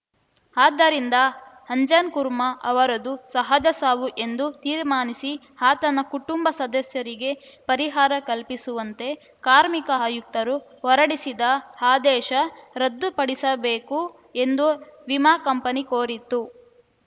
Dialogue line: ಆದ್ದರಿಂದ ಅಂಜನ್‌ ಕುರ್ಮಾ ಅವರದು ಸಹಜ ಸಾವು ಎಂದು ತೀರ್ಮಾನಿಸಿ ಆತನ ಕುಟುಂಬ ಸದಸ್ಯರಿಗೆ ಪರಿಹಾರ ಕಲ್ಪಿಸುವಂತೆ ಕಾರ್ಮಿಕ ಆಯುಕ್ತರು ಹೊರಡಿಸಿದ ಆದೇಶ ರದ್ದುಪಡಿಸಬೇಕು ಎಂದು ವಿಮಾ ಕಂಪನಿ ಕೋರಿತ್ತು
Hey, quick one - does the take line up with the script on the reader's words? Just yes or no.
yes